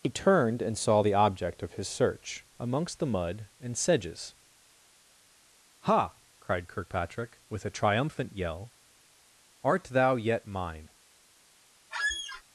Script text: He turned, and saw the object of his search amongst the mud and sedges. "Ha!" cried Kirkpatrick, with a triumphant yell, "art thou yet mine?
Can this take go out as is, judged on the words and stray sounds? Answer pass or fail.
fail